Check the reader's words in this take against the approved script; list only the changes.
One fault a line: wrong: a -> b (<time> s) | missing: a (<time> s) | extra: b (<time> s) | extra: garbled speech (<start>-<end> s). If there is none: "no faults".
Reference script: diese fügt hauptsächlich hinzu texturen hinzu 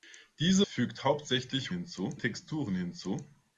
no faults